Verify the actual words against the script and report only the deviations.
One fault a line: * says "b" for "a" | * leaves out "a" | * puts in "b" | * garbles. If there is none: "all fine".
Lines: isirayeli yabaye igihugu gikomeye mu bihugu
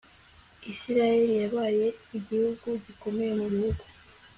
all fine